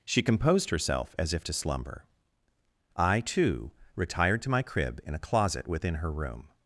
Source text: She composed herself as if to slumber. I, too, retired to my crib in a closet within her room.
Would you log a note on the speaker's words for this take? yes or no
no